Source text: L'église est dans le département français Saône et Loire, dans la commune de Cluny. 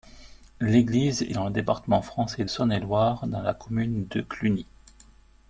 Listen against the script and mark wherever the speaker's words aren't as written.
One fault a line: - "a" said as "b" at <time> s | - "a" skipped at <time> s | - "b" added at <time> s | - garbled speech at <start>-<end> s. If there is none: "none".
none